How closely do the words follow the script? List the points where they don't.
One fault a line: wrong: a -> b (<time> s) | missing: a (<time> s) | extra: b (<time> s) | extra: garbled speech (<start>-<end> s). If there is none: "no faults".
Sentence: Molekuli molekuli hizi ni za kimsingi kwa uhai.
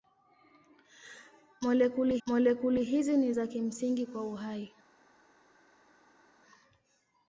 no faults